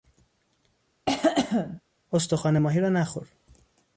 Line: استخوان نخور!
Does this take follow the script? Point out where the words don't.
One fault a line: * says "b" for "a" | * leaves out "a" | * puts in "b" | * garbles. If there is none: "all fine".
* puts in "ماهی را"